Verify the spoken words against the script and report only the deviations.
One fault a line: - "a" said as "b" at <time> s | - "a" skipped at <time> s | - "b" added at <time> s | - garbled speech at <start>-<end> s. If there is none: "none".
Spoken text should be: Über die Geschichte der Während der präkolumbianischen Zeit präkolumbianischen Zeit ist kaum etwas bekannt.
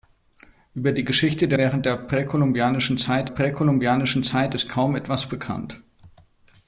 none